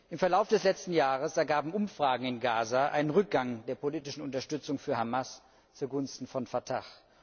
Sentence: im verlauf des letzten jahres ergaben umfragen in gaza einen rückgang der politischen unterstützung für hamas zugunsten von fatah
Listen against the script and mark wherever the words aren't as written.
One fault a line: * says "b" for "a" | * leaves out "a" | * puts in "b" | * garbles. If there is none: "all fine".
all fine